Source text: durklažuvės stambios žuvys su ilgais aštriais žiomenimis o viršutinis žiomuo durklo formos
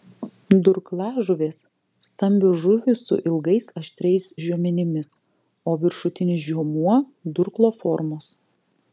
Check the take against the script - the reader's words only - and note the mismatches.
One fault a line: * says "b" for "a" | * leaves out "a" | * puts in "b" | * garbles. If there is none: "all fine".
all fine